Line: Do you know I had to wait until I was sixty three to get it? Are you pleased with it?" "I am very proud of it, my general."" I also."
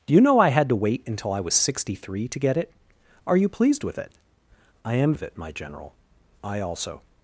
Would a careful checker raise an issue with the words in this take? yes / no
yes